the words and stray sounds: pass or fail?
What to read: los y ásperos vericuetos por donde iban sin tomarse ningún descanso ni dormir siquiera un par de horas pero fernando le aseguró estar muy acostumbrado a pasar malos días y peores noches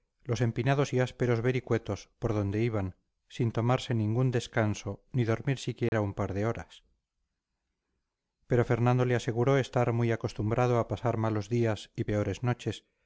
fail